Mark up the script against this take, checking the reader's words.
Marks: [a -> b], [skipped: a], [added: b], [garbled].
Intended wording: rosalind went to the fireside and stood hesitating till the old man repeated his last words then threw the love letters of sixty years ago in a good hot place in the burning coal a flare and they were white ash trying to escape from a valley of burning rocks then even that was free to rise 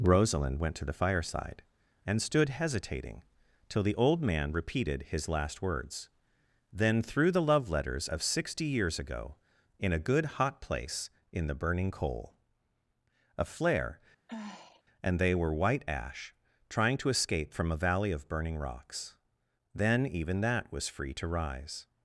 rosalind went to the fireside and stood hesitating till the old man repeated his last words then threw the love letters of sixty years ago in a good hot place in the burning coal a flare and they were white ash trying to escape from a valley of burning rocks then even that was free to rise